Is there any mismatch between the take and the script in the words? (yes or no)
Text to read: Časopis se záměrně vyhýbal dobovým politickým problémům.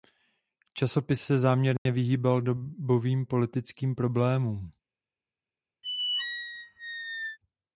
no